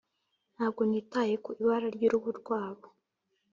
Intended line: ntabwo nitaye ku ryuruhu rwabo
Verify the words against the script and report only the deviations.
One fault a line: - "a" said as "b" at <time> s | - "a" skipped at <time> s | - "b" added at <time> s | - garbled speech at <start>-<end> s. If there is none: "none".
- "ibara" added at 1.6 s